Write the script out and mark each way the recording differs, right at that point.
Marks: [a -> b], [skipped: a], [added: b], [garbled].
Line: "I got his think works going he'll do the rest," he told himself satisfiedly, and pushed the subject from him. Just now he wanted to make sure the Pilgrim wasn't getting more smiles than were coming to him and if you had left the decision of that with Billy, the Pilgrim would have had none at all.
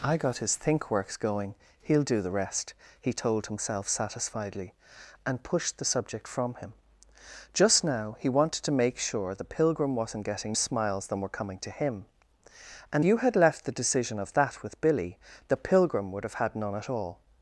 "I got his think works going he'll do the rest," he told himself satisfiedly, and pushed the subject from him. Just now he wanted to make sure the Pilgrim wasn't getting [skipped: more] smiles than were coming to him and [skipped: if] you had left the decision of that with Billy, the Pilgrim would have had none at all.